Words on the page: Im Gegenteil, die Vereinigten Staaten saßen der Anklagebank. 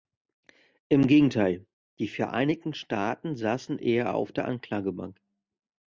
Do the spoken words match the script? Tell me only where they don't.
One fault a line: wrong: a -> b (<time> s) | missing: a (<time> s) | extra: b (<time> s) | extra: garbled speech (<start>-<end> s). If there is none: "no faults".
extra: eher auf (3.8 s)